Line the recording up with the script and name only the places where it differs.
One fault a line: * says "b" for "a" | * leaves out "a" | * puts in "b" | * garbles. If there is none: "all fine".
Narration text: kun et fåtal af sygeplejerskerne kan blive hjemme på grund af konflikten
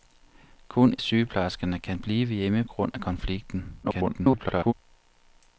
* leaves out "et fåtal af"
* leaves out "på"
* garbles